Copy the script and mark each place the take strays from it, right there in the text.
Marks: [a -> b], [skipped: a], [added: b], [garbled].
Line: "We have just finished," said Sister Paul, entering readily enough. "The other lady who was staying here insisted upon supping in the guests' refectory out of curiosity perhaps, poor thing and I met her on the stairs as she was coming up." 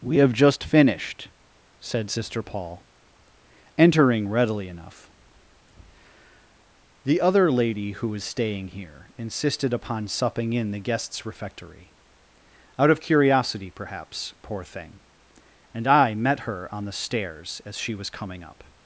"We have just finished," said Sister Paul, entering readily enough. "The other lady who was staying here insisted upon supping in the guests' refectory out of curiosity perhaps, poor thing and I met her on the stairs as she was coming up."